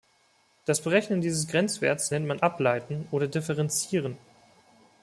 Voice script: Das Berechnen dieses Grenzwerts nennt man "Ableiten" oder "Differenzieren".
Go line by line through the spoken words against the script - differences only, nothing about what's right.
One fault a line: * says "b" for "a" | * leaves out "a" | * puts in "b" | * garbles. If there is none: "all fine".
all fine